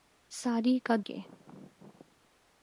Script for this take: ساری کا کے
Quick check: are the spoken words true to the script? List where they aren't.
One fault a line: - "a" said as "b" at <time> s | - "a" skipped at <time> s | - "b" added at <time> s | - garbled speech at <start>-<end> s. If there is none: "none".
none